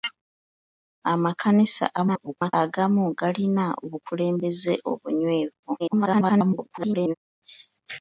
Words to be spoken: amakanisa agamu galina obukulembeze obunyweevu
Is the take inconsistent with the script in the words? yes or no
yes